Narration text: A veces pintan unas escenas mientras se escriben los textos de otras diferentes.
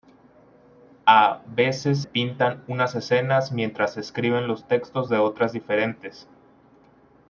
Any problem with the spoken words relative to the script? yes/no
no